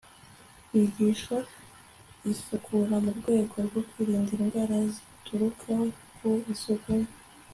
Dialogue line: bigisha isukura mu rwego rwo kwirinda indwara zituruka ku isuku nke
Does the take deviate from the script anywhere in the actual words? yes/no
no